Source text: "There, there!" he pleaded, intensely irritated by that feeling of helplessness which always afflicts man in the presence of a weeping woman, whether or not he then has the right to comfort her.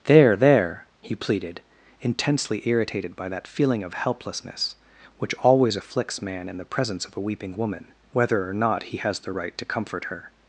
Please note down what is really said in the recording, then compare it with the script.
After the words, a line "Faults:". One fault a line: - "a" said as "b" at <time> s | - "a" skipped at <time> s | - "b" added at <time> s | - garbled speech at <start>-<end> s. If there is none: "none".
"There, there!" he pleaded, intensely irritated by that feeling of helplessness which always afflicts man in the presence of a weeping woman, whether or not he has the right to comfort her.
Faults:
- "then" skipped at 9.0 s